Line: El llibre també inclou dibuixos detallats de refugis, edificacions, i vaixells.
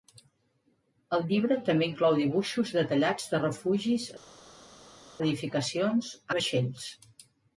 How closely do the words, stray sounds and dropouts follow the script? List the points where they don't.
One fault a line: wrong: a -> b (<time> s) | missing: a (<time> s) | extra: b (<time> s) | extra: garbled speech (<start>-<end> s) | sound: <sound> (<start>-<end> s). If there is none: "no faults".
no faults